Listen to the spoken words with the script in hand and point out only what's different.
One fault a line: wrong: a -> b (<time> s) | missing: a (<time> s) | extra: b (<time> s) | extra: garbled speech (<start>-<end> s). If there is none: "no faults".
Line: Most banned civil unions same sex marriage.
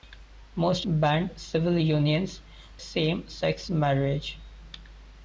no faults